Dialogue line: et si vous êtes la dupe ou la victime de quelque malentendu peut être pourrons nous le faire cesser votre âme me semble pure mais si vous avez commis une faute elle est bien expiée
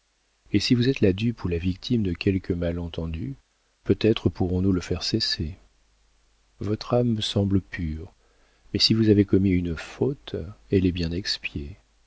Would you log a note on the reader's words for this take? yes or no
no